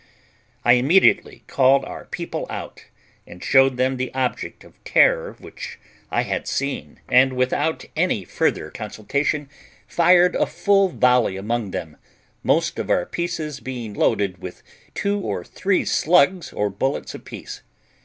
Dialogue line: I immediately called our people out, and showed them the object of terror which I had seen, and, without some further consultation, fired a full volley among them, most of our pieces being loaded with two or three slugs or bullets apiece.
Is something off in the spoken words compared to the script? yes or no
yes